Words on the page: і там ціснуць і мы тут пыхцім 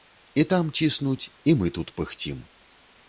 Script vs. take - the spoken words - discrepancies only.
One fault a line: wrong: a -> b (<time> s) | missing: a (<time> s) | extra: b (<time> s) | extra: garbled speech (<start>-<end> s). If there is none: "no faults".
no faults